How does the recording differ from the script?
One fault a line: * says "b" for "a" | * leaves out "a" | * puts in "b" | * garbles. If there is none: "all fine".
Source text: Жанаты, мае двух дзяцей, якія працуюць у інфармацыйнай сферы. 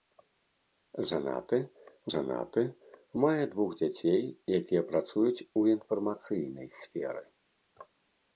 * puts in "жанаты"